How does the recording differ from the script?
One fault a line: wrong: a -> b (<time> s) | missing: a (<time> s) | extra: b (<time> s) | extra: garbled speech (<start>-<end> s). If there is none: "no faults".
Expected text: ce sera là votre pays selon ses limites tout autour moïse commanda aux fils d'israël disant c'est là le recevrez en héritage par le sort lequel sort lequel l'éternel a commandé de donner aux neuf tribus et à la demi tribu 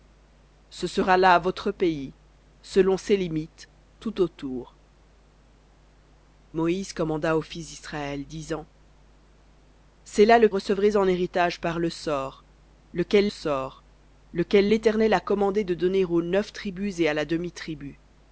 no faults